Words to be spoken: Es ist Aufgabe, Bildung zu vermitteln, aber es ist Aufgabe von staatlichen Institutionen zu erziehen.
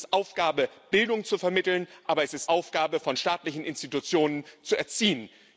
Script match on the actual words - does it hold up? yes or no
yes